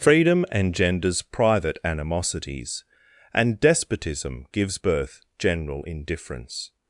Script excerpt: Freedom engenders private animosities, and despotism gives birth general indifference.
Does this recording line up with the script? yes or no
yes